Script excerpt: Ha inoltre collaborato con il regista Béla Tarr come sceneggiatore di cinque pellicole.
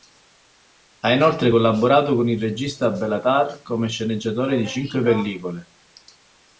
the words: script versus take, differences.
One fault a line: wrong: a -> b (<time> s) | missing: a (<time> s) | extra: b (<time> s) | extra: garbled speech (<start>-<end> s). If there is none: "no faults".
no faults